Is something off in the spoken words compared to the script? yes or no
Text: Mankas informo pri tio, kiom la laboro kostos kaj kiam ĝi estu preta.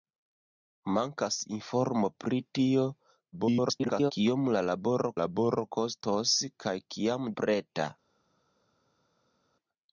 yes